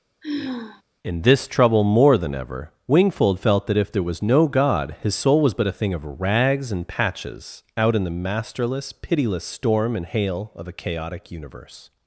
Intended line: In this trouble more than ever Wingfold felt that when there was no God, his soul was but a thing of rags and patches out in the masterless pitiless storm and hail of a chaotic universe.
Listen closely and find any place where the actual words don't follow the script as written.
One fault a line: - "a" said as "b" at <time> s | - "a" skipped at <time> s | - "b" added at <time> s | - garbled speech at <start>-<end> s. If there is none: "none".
- "when" said as "if" at 3.8 s